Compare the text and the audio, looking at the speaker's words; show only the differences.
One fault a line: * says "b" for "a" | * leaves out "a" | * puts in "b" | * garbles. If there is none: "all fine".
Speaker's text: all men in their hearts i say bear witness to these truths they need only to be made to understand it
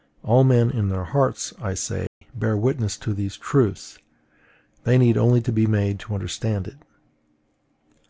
all fine